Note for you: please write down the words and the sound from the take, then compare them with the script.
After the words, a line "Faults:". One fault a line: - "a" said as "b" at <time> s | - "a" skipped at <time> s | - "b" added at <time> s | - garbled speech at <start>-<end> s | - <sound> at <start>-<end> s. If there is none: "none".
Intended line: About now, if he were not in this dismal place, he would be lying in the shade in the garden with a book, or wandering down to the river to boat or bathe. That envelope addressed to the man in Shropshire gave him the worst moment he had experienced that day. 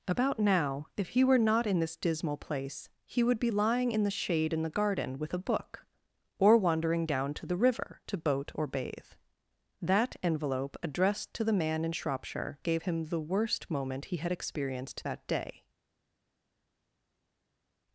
About now, if he were not in this dismal place, he would be lying in the shade in the garden with a book, or wandering down to the river to boat or bathe. That envelope addressed to the man in Shropshire gave him the worst moment he had experienced that day.
Faults:
none